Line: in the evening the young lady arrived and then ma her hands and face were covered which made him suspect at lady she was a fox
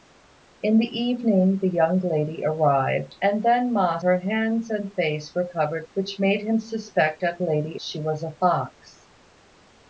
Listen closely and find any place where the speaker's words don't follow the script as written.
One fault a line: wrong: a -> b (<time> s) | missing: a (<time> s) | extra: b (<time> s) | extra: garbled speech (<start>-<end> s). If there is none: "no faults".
no faults